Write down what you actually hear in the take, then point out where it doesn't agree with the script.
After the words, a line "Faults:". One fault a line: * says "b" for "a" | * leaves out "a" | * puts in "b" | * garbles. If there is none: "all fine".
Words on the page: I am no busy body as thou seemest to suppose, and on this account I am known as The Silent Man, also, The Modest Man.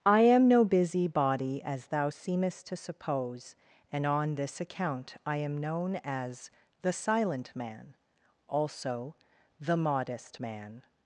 I am no busy body as thou seemest to suppose, and on this account I am known as The Silent Man, also, The Modest Man.
Faults:
all fine